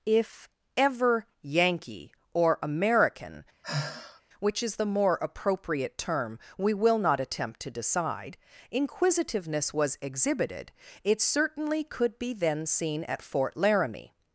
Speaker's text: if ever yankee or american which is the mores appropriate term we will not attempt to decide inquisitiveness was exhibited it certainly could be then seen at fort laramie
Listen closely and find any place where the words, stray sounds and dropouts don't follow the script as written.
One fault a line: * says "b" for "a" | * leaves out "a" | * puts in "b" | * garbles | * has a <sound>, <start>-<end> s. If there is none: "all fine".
* has a sigh, 3.6-4.2 s
* says "more" for "mores"